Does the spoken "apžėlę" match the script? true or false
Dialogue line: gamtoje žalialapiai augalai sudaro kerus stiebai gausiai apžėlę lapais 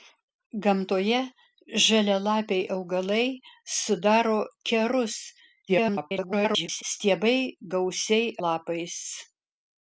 false